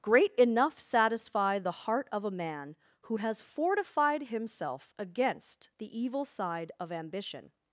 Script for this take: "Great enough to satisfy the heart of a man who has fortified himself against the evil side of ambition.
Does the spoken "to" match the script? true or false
false